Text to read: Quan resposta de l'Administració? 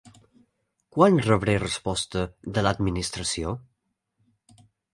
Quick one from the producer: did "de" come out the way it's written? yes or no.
yes